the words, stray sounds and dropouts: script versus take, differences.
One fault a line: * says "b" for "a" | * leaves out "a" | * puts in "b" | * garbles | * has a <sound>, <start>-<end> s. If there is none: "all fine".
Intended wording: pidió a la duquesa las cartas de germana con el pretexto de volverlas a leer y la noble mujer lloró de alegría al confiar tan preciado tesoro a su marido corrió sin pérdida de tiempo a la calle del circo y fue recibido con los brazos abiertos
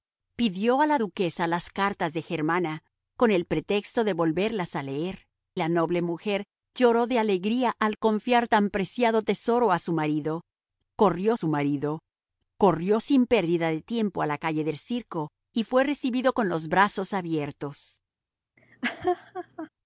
* leaves out "y"
* puts in "su marido corrió"
* has a laugh, 18.6-19.7 s